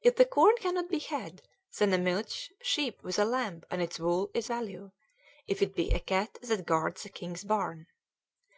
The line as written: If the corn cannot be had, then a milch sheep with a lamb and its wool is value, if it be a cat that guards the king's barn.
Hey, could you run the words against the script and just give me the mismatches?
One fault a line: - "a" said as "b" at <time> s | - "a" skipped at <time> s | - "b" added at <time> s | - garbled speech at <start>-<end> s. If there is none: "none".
none